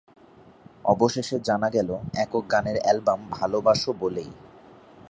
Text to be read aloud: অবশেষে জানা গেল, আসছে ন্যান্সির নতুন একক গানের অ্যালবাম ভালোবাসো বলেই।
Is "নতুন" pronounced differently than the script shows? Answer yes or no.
yes